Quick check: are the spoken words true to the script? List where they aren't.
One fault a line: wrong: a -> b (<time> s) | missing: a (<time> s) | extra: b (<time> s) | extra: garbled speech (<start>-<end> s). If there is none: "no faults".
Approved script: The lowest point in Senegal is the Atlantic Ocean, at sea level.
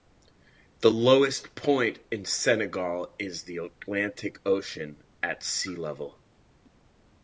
no faults